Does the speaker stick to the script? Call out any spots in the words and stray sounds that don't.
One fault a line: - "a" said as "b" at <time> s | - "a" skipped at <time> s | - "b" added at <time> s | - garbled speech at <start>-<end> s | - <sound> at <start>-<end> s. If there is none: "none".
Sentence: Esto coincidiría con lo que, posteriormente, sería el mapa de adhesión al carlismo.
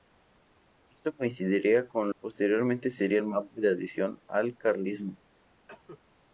- "lo que" skipped at 2.1 s
- cough at 5.7-6.0 s